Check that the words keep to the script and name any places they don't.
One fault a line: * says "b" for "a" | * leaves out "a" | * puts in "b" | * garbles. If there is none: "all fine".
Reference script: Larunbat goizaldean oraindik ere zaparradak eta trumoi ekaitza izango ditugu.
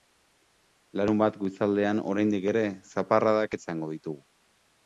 * leaves out "eta trumoi ekaitza"